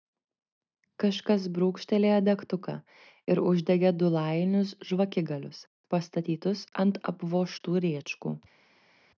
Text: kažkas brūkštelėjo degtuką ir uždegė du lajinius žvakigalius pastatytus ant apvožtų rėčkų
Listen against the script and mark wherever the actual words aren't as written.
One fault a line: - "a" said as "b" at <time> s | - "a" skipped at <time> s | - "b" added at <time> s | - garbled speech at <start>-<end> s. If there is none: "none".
none